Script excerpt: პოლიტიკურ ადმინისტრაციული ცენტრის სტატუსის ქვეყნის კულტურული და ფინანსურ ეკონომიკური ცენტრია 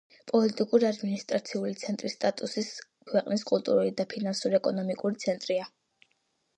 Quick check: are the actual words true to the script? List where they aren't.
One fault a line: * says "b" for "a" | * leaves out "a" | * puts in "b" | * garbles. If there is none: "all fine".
all fine